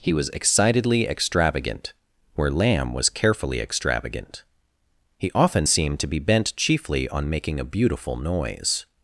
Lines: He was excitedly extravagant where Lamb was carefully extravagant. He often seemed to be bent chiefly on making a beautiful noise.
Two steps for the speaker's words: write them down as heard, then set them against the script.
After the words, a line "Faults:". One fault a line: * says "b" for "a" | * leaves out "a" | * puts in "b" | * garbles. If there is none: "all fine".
He was excitedly extravagant where Lamb was carefully extravagant. He often seemed to be bent chiefly on making a beautiful noise.
Faults:
all fine